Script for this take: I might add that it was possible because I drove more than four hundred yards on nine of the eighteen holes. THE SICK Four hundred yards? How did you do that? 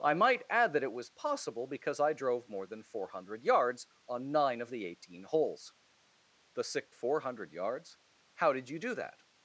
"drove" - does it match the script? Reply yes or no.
yes